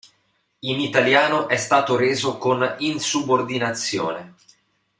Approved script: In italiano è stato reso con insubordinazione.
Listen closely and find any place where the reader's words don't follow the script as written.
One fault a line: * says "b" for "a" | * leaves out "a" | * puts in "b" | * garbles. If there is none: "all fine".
all fine